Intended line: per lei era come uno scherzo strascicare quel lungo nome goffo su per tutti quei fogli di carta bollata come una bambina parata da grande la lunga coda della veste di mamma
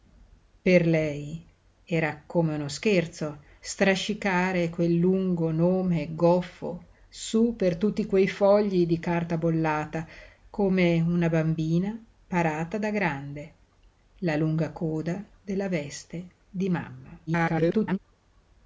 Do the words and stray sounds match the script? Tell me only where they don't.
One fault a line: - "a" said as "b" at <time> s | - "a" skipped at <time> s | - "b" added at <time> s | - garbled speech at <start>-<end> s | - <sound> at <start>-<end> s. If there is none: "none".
- garbled speech at 17.3-18.0 s